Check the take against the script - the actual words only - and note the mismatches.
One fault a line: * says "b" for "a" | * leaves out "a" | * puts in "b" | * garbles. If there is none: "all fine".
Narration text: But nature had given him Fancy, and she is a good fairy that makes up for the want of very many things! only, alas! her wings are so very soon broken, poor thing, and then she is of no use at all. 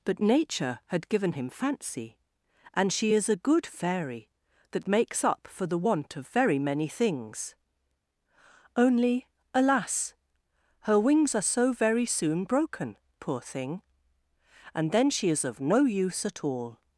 all fine